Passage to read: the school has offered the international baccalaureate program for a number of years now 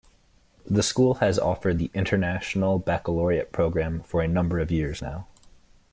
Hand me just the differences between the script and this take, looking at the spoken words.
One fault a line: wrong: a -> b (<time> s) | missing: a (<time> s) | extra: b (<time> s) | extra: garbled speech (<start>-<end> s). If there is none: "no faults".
no faults